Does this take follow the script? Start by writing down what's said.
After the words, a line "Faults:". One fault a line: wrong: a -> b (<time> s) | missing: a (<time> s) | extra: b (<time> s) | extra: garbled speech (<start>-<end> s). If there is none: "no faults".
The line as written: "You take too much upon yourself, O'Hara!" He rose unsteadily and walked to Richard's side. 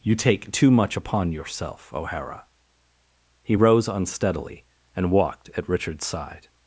"You take too much upon yourself, O'Hara!" He rose unsteadily and walked at Richard's side.
Faults:
wrong: to -> at (5.6 s)